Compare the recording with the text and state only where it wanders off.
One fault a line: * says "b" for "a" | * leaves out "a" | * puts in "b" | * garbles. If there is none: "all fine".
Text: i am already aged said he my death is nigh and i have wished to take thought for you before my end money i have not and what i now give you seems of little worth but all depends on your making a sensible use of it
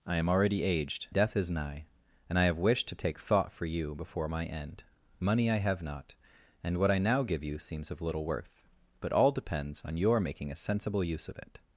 * leaves out "said he my"